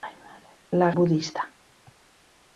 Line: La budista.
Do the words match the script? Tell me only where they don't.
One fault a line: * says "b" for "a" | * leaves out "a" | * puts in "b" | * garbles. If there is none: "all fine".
all fine